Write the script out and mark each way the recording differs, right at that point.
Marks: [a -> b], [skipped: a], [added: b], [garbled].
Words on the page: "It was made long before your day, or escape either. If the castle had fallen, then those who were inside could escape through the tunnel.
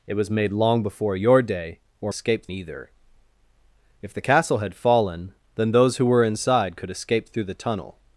"It was made long before your day, or escape either. If the castle had fallen, then those who were inside could escape through the tunnel.